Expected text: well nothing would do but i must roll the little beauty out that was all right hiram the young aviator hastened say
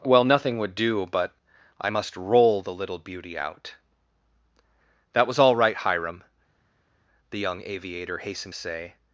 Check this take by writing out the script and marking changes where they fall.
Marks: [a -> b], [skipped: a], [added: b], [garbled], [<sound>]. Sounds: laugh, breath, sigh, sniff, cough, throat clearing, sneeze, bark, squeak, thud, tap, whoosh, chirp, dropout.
well nothing would do but i must roll the little beauty out that was all right hiram the young aviator hastened say